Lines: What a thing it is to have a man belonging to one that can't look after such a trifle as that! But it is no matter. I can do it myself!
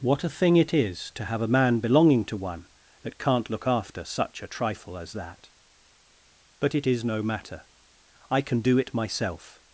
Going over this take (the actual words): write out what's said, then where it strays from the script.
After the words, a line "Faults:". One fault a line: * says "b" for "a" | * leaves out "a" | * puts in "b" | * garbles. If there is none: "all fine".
What a thing it is to have a man belonging to one that can't look after such a trifle as that! But it is no matter. I can do it myself!
Faults:
all fine